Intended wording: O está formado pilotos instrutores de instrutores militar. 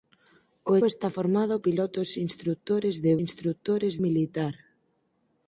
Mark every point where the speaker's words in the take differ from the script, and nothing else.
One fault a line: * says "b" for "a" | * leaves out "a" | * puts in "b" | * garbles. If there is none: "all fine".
all fine